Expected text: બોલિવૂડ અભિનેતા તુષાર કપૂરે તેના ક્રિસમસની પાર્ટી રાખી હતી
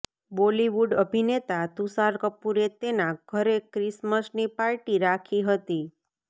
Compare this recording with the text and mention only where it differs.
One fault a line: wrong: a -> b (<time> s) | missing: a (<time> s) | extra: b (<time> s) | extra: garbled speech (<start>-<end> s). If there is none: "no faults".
extra: ઘરે (3.3 s)